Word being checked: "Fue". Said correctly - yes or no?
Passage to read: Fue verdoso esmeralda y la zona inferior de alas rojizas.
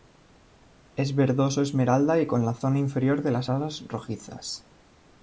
no